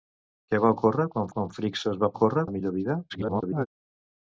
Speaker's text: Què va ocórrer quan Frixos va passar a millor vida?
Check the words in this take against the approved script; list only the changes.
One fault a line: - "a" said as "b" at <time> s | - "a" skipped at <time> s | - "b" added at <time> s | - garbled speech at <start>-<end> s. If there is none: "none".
- "quan" added at 1.3 s
- "passar" said as "ocórrer" at 2.1 s
- garbled speech at 3.1-3.7 s